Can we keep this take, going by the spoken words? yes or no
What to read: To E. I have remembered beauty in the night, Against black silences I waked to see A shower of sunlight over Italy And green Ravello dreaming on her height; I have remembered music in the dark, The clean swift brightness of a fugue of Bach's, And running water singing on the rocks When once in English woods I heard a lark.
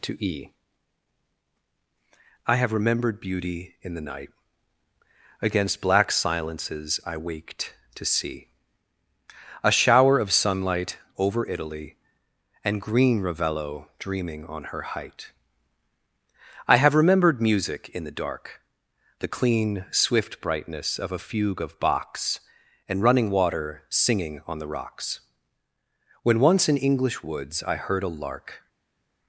yes